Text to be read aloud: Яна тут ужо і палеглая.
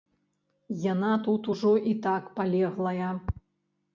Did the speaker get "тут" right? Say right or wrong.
right